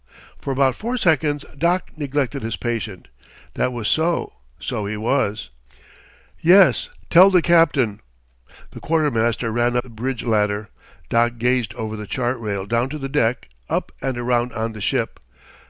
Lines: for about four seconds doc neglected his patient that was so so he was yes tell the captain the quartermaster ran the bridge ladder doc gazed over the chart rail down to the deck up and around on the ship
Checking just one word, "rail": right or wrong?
right